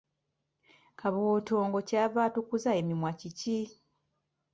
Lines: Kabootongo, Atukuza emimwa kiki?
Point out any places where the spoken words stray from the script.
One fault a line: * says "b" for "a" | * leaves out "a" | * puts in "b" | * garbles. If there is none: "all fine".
* puts in "Kyava"